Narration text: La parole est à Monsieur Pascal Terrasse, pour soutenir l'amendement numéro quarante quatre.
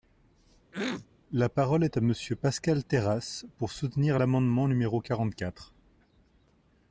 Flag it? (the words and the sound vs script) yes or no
yes